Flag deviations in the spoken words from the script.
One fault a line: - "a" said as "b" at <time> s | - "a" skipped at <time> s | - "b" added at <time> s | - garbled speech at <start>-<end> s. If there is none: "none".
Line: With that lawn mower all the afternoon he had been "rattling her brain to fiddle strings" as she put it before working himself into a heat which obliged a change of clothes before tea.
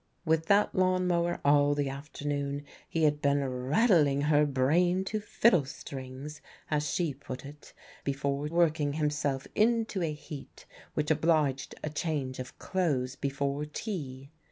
none